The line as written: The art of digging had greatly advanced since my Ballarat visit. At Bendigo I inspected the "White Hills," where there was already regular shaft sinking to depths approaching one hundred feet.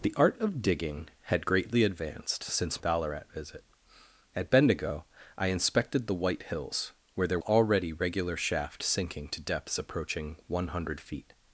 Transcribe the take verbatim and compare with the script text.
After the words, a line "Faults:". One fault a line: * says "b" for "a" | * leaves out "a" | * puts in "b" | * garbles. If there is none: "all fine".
The art of digging had greatly advanced since Ballarat visit. At Bendigo I inspected the "White Hills," where there already regular shaft sinking to depths approaching one hundred feet.
Faults:
* leaves out "my"
* leaves out "was"